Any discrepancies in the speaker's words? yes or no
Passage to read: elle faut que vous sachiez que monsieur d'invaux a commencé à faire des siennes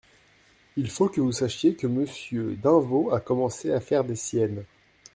yes